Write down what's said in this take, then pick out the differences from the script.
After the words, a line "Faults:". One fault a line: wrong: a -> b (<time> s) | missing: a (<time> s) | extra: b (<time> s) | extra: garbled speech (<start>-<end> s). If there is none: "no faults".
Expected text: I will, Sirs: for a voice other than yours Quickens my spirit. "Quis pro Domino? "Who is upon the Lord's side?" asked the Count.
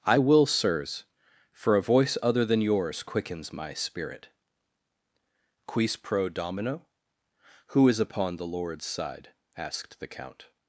I will, Sirs: for a voice other than yours Quickens my spirit. "Quis pro Domino? "Who is upon the Lord's side?" asked the Count.
Faults:
no faults